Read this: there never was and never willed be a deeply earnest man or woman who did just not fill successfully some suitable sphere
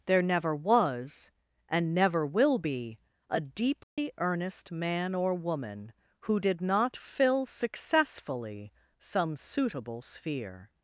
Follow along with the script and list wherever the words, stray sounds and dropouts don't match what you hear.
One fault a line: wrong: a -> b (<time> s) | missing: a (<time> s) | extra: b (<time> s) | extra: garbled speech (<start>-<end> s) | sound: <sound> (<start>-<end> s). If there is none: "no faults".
wrong: willed -> will (2.2 s)
sound: dropout (3.8-4.0 s)
missing: just (6.6 s)